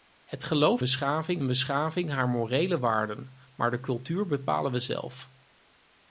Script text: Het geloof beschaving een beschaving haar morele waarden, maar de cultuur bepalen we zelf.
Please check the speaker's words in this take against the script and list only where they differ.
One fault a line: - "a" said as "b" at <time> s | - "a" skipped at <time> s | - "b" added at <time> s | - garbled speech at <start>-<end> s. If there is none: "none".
none